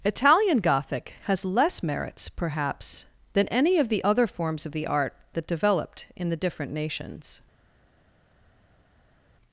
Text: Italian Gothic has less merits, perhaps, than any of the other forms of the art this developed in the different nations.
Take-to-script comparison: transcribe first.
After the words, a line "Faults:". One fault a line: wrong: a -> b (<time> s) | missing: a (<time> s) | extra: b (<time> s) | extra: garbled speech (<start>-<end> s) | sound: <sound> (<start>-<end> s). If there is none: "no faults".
Italian Gothic has less merits, perhaps, than any of the other forms of the art that developed in the different nations.
Faults:
wrong: this -> that (5.3 s)